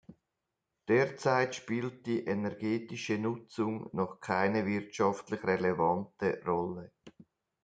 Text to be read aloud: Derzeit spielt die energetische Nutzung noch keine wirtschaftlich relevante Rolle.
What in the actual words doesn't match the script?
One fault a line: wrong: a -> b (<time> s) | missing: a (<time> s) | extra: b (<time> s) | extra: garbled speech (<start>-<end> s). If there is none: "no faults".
no faults